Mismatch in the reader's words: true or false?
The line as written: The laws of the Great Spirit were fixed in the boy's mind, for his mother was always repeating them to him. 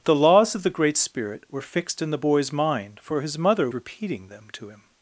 true